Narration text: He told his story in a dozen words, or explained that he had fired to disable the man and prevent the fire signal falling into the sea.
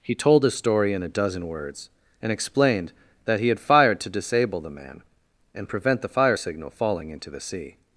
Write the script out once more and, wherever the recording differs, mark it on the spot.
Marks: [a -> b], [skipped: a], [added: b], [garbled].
He told his story in a dozen words, [or -> and] explained that he had fired to disable the man and prevent the fire signal falling into the sea.